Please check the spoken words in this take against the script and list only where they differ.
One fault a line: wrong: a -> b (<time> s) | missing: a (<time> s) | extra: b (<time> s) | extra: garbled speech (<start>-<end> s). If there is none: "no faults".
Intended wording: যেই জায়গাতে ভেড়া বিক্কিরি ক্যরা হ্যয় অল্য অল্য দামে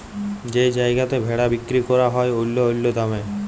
no faults